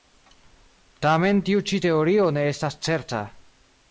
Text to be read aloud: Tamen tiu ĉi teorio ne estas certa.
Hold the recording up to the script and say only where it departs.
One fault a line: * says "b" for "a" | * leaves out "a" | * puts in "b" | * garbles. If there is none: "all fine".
all fine